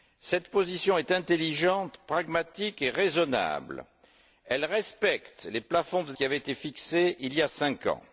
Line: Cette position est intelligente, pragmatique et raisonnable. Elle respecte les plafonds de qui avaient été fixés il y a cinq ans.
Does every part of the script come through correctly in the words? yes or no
yes